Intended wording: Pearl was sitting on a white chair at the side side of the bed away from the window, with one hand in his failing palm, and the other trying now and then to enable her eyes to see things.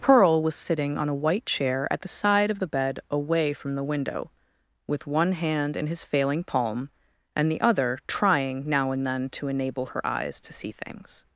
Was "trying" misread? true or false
false